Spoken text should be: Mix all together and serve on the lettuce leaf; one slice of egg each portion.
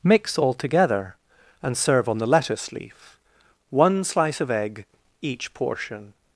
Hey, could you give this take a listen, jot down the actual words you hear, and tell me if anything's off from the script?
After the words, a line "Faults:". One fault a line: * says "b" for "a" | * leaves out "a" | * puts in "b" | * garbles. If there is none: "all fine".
Mix all together and serve on the lettuce leaf; one slice of egg each portion.
Faults:
all fine